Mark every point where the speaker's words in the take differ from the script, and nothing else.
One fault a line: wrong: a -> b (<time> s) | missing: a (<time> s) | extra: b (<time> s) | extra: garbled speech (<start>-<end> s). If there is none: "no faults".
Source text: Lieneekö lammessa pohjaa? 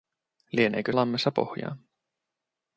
no faults